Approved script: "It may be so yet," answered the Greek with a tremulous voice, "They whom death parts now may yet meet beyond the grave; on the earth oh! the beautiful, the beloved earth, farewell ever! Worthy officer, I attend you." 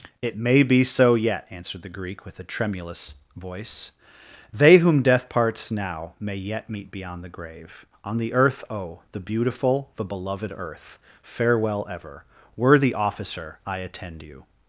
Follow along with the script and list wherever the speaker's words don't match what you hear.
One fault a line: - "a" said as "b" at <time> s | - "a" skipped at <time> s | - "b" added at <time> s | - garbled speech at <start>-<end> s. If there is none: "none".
none